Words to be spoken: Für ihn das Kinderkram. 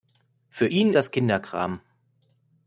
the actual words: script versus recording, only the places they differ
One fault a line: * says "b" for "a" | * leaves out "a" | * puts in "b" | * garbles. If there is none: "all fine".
all fine